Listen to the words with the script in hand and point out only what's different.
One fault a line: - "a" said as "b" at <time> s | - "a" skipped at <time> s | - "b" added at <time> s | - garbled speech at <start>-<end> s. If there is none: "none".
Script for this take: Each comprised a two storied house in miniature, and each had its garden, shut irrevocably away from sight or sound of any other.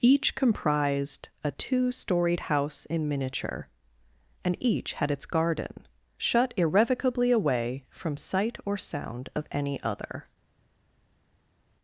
none